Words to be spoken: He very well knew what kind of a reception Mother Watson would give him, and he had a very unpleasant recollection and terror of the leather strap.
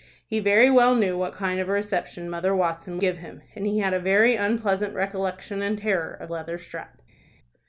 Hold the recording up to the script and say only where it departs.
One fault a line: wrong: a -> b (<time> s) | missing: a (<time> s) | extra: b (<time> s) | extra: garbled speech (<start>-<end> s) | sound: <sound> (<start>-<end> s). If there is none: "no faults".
missing: would (3.0 s)
missing: the (6.3 s)